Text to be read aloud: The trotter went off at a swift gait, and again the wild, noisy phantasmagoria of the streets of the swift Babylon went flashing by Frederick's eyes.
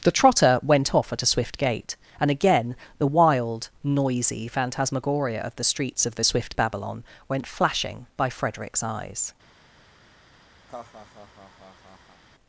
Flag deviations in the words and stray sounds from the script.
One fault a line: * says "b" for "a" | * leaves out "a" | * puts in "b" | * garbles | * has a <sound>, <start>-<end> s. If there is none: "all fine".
* has a laugh, 10.7-12.2 s